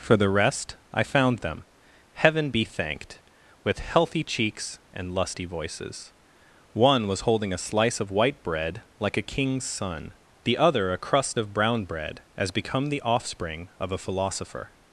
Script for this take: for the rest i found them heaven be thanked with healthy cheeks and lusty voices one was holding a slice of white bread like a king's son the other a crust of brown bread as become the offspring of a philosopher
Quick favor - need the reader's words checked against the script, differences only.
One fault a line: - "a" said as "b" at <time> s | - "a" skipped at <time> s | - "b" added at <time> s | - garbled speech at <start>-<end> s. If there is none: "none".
none